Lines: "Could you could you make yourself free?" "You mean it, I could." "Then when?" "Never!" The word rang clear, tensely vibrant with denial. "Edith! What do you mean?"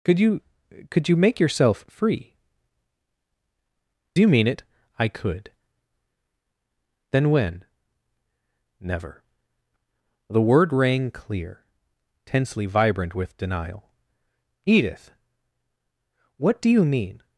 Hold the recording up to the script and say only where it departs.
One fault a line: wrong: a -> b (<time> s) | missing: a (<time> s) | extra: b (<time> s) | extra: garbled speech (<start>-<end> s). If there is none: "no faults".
no faults